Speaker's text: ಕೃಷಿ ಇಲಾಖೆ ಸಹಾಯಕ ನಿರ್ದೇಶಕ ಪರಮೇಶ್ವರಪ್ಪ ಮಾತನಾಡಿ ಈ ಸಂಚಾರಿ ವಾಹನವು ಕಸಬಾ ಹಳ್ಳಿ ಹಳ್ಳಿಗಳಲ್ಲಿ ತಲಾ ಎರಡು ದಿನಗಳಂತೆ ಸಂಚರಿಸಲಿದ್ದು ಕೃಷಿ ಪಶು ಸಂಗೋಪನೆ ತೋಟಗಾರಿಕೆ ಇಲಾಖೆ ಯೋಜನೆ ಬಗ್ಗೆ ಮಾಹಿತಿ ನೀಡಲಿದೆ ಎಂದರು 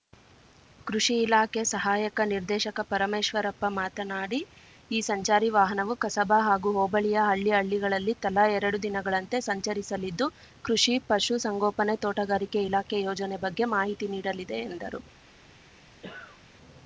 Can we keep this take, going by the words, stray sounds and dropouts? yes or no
no